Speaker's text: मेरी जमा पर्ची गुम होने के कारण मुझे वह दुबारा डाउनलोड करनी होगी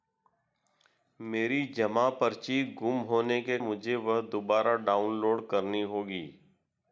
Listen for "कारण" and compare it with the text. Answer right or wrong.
wrong